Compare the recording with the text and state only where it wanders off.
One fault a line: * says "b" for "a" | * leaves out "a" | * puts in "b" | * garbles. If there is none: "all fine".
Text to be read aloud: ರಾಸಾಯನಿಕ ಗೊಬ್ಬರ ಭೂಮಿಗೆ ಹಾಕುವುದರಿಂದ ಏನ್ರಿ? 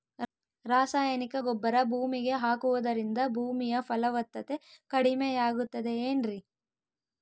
* puts in "ಭೂಮಿಯ ಫಲವತ್ತತೆ ಕಡಿಮೆಯಾಗುತ್ತದೆ"